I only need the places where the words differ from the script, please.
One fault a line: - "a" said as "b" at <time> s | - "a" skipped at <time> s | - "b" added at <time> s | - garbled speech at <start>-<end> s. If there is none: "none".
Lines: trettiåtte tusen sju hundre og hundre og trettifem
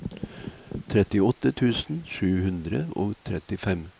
- "hundre og" skipped at 3.1 s